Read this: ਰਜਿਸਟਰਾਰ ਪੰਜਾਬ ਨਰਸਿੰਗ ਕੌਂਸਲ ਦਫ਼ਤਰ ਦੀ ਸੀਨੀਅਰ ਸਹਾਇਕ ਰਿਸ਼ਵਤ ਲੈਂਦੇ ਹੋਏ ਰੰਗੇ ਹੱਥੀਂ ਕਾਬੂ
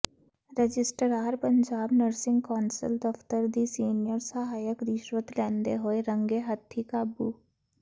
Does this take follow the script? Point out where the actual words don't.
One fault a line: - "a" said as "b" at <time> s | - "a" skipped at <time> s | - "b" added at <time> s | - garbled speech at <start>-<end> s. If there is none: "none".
none